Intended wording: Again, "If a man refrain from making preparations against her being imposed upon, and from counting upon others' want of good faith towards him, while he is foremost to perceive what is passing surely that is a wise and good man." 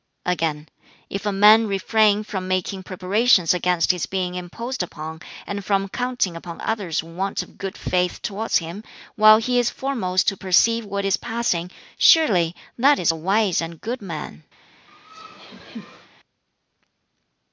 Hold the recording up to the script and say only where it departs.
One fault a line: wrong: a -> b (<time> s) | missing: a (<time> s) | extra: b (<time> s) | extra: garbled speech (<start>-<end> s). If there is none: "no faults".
wrong: her -> his (3.9 s)